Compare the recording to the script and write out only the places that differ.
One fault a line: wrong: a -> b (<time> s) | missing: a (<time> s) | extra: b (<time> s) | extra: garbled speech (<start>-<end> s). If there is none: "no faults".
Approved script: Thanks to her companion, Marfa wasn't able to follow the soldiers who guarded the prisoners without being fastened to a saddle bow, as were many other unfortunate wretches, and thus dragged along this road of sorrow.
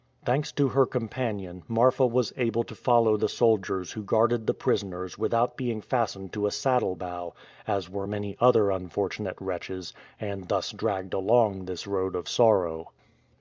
wrong: wasn't -> was (2.1 s)